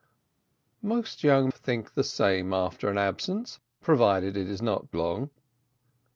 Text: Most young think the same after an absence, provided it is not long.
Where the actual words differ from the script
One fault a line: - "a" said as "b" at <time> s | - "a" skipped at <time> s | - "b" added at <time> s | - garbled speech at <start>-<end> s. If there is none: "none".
none